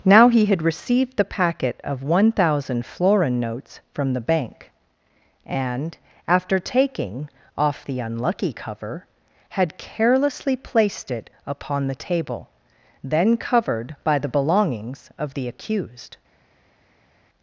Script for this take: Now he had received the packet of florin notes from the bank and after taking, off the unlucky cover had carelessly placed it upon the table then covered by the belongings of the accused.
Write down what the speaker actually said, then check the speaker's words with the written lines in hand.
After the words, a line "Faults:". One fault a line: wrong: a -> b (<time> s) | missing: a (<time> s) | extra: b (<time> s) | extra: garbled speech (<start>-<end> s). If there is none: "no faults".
Now he had received the packet of one thousand florin notes from the bank and after taking, off the unlucky cover had carelessly placed it upon the table then covered by the belongings of the accused.
Faults:
extra: one thousand (2.0 s)